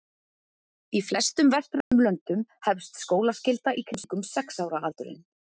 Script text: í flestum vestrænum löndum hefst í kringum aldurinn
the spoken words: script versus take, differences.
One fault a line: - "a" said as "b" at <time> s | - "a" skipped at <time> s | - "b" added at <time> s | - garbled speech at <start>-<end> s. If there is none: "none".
- "skólaskylda" added at 3.0 s
- "sex ára" added at 4.3 s